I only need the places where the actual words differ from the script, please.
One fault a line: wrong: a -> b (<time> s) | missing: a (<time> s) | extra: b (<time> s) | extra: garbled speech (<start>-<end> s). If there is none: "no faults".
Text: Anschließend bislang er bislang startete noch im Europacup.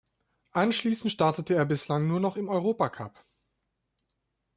wrong: bislang -> startete (1.1 s)
wrong: startete -> nur (2.1 s)